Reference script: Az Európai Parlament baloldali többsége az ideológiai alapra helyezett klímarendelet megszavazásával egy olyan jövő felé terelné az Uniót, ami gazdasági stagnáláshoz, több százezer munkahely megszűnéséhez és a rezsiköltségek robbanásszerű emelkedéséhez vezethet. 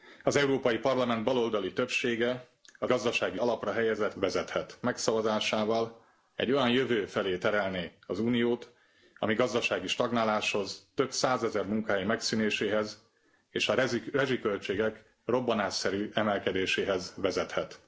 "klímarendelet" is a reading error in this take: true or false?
true